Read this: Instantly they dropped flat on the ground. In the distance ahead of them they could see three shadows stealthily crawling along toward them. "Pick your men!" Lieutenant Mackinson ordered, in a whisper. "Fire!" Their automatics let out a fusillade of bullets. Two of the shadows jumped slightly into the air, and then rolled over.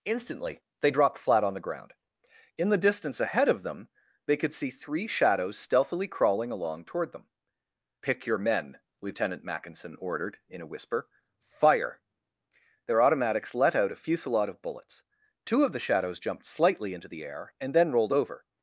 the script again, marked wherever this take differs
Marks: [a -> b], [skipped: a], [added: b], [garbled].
Instantly they dropped flat on the ground. In the distance ahead of them they could see three shadows stealthily crawling along toward them. "Pick your men!" Lieutenant Mackinson ordered, in a whisper. "Fire!" Their automatics let out a fusillade of bullets. Two of the shadows jumped slightly into the air, and then rolled over.